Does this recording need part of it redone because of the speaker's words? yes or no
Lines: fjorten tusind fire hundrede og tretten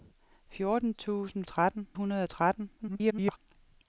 yes